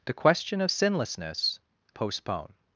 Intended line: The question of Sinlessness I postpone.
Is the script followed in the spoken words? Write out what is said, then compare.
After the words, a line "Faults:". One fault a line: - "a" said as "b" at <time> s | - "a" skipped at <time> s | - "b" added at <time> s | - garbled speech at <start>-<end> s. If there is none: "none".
The question of Sinlessness postpone.
Faults:
- "I" skipped at 1.6 s